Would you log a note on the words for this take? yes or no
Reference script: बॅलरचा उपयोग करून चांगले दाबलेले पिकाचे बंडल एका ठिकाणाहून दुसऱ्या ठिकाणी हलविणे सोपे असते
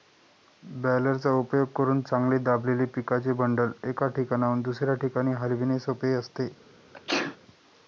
no